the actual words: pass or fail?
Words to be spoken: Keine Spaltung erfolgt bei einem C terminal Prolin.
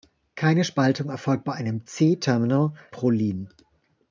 pass